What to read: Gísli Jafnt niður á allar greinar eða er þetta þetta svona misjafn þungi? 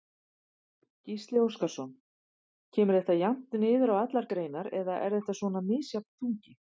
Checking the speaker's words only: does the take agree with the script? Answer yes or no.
no